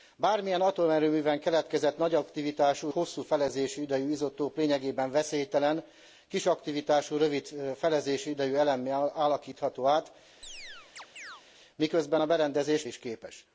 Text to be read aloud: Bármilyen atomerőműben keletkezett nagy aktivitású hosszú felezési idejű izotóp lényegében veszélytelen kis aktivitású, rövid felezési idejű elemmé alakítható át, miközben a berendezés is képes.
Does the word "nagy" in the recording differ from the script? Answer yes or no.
no